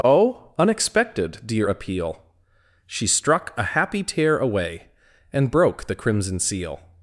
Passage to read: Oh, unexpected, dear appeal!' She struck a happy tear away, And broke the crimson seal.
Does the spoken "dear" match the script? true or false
true